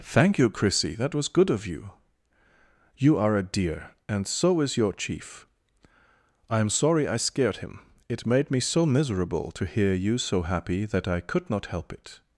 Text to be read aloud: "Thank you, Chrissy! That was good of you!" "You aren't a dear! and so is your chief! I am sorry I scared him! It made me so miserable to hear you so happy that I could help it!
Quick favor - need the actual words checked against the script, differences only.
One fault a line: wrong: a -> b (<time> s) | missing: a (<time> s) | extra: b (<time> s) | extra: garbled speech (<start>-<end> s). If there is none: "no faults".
wrong: aren't -> are (3.2 s)
extra: not (11.5 s)